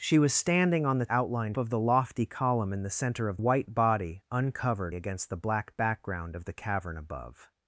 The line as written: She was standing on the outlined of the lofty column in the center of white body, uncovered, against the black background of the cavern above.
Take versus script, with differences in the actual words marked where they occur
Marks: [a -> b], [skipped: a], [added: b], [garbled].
She was standing on the outlined of the lofty column in the center of white body, uncovered, against the black background of the cavern above.